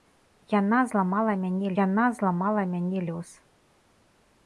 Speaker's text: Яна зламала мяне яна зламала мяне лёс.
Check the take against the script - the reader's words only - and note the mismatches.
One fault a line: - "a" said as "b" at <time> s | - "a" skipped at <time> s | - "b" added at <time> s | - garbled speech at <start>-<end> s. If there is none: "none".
none